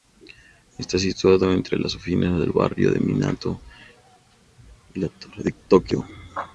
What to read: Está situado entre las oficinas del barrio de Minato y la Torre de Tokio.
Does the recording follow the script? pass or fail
pass